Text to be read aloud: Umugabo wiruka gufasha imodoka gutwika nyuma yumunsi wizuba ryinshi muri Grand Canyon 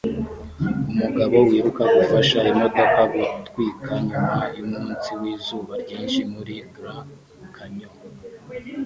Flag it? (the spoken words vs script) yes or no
no